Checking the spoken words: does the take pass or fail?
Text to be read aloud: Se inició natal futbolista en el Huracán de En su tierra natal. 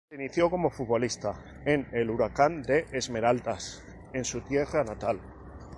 fail